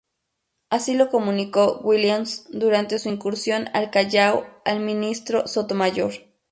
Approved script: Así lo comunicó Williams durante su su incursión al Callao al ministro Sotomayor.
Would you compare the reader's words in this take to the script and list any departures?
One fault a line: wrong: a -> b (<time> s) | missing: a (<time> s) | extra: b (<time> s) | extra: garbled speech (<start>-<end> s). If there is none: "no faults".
missing: su (3.1 s)